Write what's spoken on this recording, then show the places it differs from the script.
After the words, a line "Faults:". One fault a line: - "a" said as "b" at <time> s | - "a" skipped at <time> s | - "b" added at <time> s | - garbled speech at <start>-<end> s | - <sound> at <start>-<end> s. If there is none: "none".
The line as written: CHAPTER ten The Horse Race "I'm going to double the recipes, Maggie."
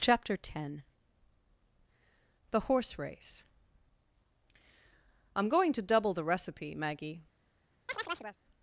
CHAPTER ten The Horse Race "I'm going to double the recipe, Maggie."
Faults:
- "recipes" said as "recipe" at 6.2 s
- chirp at 7.9-8.4 s